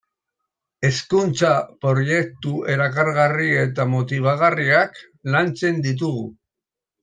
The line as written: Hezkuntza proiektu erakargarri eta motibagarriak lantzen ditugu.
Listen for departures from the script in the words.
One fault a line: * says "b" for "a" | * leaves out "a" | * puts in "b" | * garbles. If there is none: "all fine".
all fine